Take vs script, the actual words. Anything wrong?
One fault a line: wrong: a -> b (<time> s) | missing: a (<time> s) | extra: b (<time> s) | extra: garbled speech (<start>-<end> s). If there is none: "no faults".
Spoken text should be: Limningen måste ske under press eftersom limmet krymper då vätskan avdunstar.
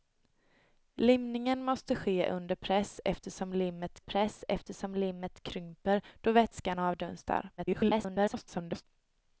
extra: press eftersom limmet (4.0 s)
extra: garbled speech (7.6-8.8 s)